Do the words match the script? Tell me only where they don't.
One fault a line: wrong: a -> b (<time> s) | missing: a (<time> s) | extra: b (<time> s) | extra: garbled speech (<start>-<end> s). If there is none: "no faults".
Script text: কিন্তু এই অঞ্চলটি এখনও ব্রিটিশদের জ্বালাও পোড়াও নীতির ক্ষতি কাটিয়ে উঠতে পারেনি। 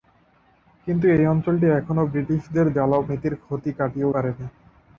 missing: পোড়াও (3.0 s)
missing: উঠতে (4.1 s)